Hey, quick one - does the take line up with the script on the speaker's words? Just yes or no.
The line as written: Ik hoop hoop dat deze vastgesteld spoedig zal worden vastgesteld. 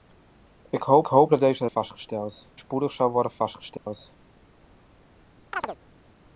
yes